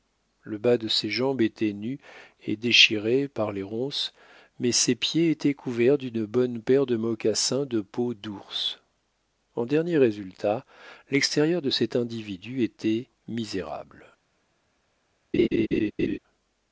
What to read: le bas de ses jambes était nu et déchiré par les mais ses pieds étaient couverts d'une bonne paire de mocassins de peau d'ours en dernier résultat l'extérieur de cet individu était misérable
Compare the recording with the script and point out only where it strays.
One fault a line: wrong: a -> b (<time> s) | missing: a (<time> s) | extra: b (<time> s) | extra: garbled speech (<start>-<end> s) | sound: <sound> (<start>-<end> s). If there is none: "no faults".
extra: ronces (3.6 s)
sound: laugh (15.3-16.2 s)